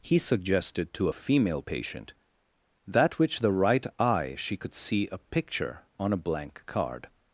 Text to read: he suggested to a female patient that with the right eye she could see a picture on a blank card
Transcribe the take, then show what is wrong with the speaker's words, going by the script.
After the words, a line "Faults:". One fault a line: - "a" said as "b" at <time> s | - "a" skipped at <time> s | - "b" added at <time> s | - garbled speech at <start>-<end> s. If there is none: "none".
he suggested to a female patient that which the right eye she could see a picture on a blank card
Faults:
- "with" said as "which" at 3.2 s